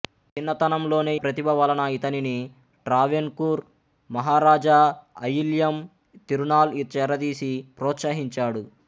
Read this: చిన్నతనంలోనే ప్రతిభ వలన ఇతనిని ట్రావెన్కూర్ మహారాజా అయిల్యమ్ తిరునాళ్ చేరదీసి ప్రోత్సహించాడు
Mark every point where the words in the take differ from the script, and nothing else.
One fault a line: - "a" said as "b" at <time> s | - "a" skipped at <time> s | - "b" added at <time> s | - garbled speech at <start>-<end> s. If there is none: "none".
none